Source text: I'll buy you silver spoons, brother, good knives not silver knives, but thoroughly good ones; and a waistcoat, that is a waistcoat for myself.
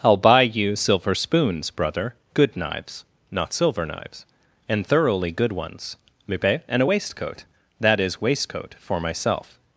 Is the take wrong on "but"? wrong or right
wrong